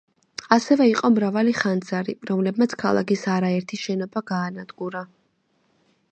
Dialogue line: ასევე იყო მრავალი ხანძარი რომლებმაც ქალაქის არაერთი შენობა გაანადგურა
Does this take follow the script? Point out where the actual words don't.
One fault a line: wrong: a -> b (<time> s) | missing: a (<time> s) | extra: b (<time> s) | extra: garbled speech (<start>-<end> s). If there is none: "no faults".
no faults